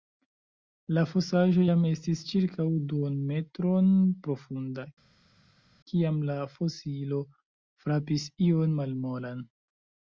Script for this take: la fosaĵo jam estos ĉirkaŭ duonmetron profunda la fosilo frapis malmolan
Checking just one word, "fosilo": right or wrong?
right